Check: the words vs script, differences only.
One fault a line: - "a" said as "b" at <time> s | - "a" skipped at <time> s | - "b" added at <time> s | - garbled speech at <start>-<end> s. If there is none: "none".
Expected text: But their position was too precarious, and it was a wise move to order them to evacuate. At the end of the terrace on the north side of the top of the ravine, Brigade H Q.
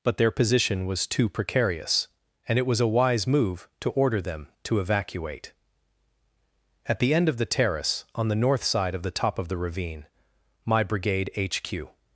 - "my" added at 10.7 s